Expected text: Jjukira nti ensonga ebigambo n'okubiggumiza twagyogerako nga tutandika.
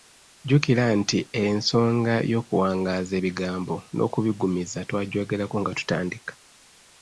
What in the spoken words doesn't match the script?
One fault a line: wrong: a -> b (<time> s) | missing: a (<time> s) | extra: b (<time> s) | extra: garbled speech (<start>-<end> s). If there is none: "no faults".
extra: y'okuwangaaza (2.3 s)